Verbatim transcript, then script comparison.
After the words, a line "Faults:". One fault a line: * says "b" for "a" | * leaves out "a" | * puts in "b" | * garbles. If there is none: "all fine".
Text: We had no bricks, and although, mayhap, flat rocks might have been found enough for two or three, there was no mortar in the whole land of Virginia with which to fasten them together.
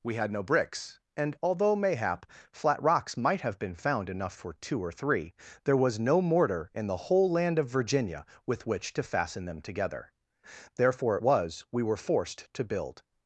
We had no bricks, and although, mayhap, flat rocks might have been found enough for two or three, there was no mortar in the whole land of Virginia with which to fasten them together. Therefore it was we were forced to build
Faults:
* puts in "Therefore it was we were forced to build"